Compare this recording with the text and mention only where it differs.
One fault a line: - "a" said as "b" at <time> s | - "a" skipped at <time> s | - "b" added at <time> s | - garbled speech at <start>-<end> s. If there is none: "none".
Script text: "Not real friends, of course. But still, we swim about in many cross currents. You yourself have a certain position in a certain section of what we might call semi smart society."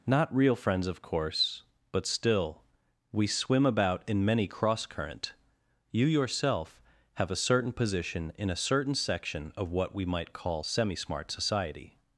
- "currents" said as "current" at 4.8 s